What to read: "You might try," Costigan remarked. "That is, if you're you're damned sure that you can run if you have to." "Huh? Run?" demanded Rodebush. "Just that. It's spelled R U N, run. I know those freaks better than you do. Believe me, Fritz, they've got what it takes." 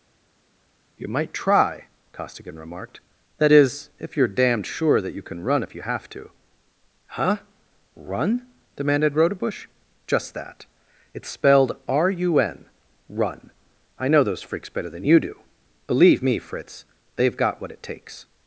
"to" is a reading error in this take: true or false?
false